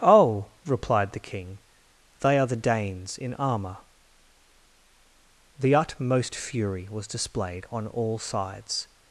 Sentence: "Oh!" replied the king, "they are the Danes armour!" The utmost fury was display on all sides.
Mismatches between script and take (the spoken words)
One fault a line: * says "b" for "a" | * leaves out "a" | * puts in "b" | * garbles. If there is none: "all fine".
* puts in "in"
* says "displayed" for "display"